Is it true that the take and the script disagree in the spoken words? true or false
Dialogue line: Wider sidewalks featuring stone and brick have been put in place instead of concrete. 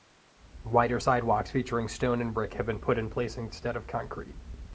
false